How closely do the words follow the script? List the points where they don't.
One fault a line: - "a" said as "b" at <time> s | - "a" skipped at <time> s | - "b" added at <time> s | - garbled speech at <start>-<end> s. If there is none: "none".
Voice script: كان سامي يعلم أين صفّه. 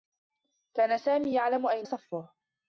none